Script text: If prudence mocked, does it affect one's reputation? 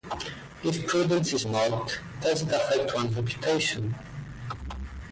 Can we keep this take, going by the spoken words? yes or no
no